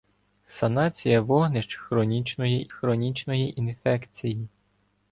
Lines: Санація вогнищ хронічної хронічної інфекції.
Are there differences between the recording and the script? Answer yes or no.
no